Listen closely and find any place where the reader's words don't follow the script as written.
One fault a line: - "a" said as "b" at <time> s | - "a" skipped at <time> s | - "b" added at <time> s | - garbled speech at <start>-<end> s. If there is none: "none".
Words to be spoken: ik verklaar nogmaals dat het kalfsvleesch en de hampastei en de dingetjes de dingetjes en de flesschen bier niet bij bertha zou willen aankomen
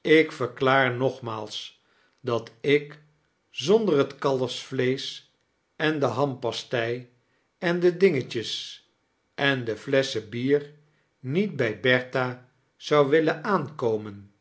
- "ik zonder" added at 2.6 s
- "de dingetjes" skipped at 8.8 s